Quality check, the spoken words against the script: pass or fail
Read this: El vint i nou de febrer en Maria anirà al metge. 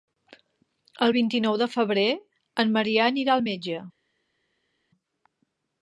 pass